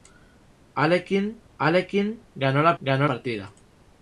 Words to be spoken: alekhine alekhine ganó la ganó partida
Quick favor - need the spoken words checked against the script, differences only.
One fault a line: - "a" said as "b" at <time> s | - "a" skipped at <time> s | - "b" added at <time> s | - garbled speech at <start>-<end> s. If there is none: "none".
none